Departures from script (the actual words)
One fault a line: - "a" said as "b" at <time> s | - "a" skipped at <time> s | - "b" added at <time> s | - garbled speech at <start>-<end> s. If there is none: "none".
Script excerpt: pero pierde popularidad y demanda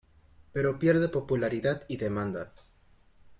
none